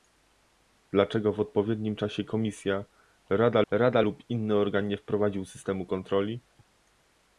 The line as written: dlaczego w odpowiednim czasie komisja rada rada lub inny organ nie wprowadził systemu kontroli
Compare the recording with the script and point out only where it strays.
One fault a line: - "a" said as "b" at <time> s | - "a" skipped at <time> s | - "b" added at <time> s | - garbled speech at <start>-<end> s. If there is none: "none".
none